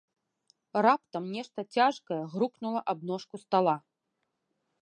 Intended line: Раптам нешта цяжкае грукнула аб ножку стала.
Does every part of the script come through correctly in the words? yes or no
yes